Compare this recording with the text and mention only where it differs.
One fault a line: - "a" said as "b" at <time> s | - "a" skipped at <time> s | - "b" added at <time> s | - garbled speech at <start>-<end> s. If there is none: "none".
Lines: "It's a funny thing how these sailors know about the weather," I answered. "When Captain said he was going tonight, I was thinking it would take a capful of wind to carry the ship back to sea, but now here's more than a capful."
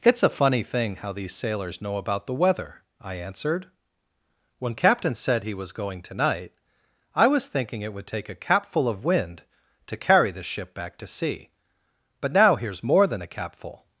none